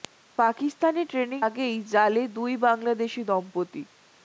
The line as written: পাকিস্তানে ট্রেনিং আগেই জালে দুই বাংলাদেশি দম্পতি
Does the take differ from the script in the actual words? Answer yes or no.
no